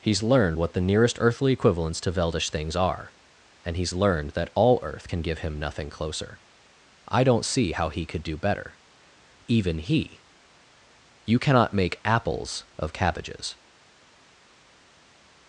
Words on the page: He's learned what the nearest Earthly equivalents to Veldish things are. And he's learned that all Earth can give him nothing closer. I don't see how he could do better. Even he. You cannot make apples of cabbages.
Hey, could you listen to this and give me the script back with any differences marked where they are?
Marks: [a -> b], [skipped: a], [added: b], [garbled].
He's learned what the nearest Earthly equivalents to Veldish things are. And he's learned that all Earth can give him nothing closer. I don't see how he could do better. Even he. You cannot make apples of cabbages.